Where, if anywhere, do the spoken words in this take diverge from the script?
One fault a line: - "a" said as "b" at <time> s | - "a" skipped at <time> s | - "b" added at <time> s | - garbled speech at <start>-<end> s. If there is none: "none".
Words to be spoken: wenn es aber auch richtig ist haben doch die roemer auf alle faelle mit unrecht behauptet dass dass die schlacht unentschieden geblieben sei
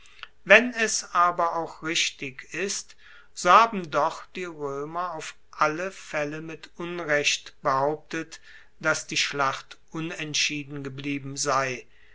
- "so" added at 3.4 s
- "dass" skipped at 9.1 s